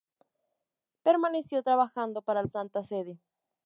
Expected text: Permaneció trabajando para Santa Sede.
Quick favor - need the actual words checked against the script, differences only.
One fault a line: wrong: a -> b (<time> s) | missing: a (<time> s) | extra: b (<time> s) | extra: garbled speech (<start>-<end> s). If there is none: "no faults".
no faults